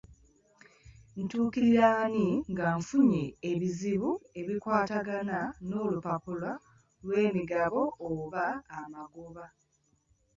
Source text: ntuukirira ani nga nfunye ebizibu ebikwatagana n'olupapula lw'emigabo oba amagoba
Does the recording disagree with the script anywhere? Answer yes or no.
no